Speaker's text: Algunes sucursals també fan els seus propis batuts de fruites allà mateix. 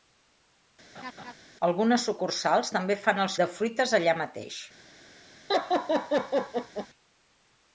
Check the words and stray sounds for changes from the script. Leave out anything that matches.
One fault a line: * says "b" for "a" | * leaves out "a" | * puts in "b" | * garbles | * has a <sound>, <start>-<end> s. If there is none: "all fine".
* has a laugh, 0.9-1.3 s
* leaves out "seus propis batuts"
* has a laugh, 5.5-6.9 s